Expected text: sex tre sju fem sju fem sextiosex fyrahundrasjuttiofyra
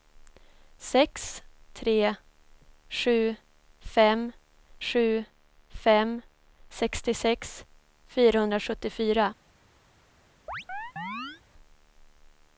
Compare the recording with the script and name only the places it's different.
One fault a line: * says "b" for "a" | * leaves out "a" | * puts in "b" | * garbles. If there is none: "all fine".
all fine